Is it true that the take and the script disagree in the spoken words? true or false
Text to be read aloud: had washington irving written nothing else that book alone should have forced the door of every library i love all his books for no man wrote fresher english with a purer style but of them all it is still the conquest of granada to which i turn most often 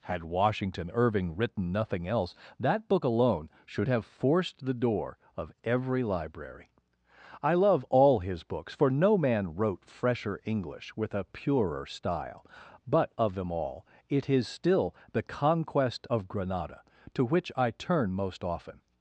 false